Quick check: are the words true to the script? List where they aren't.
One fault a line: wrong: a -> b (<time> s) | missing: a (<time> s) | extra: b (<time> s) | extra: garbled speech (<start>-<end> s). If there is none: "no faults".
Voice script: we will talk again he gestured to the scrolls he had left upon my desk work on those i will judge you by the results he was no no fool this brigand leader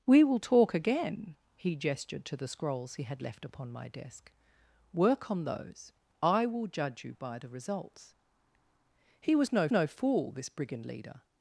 no faults